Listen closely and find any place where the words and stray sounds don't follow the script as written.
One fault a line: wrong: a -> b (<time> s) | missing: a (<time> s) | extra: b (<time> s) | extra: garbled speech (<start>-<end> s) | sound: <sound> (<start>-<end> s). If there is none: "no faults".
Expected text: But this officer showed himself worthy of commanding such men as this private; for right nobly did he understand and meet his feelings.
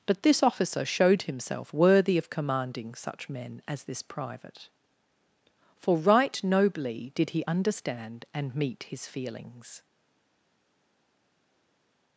no faults